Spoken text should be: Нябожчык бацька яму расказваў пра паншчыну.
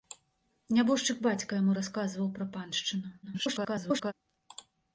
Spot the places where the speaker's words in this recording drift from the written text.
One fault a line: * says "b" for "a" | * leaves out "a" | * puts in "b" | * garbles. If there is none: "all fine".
* garbles